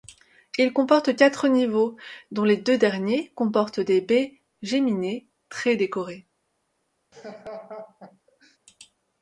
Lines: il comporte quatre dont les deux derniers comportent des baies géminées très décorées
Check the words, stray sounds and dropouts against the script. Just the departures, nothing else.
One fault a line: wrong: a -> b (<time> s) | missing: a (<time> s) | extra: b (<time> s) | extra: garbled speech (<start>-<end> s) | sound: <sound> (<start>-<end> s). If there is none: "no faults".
extra: niveaux (1.5 s)
sound: laugh (7.1-8.6 s)